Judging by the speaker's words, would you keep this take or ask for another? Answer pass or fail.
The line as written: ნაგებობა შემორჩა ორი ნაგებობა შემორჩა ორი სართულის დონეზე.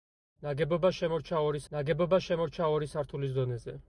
pass